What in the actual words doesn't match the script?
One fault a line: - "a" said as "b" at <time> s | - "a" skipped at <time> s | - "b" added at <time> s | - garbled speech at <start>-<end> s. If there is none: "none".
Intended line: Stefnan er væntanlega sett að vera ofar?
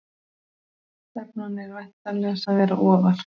- "sett" skipped at 2.4 s